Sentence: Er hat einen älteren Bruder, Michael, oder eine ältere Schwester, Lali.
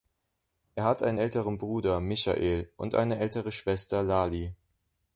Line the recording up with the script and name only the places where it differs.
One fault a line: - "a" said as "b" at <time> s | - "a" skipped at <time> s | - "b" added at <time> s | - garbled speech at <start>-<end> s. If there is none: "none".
- "oder" said as "und" at 2.8 s